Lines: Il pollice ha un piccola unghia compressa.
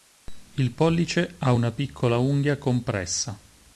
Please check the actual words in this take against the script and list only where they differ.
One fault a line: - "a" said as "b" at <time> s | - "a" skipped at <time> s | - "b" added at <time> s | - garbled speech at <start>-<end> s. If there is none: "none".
- "un" said as "una" at 1.5 s